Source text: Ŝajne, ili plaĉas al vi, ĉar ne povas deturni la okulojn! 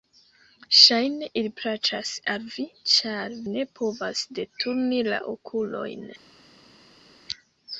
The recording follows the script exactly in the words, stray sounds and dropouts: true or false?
true